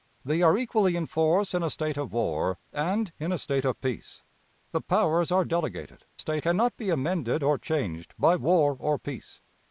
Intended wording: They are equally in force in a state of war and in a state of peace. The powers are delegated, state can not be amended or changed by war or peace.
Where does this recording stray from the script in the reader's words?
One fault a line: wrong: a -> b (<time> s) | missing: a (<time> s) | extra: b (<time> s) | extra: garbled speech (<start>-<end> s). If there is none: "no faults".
no faults